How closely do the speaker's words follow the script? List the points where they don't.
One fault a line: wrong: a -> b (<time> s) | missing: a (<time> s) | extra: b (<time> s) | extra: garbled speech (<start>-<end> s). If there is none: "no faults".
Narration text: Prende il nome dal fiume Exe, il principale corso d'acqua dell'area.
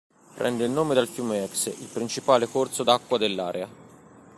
no faults